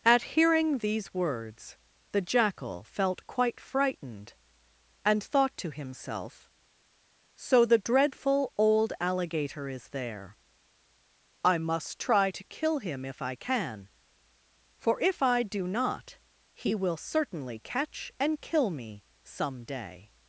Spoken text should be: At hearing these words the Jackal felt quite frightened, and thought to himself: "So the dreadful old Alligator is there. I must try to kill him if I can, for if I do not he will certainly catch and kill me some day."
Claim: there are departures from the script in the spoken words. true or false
false